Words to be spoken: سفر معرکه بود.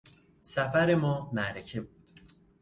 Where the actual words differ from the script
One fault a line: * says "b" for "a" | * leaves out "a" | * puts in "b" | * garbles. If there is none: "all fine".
* puts in "ما"